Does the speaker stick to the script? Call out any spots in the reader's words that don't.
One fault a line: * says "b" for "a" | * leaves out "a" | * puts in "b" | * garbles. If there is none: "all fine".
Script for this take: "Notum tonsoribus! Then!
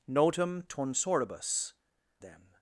all fine